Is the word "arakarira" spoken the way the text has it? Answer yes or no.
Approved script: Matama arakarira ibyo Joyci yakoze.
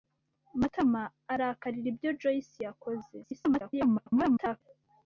yes